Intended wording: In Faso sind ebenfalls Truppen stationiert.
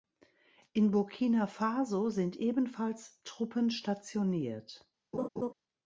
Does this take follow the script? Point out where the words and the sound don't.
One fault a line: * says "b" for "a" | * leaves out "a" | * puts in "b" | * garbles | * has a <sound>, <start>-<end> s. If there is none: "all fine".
* puts in "Burkina"
* has a laugh, 5.1-5.5 s